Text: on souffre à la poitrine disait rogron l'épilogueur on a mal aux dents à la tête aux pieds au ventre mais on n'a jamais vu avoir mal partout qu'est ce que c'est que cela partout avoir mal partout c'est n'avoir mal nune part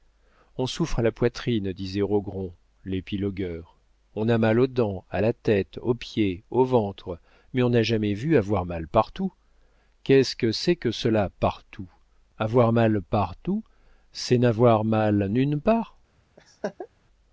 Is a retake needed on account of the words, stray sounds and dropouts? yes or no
yes